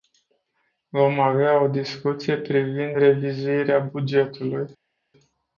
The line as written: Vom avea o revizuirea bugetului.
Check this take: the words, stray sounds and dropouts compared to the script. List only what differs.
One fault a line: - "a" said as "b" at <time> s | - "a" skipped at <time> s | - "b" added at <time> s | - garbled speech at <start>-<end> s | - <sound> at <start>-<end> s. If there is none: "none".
- "discuție privind" added at 1.7 s